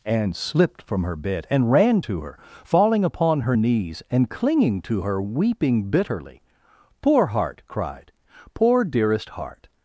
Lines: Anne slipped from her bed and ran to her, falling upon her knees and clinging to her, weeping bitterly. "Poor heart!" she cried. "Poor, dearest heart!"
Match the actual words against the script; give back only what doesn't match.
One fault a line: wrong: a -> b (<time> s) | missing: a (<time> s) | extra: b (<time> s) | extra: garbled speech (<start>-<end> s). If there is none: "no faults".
missing: she (7.6 s)